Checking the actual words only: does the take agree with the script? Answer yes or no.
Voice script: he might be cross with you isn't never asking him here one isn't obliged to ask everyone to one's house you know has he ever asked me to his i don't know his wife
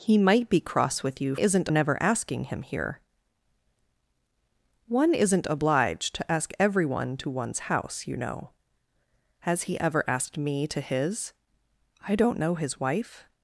yes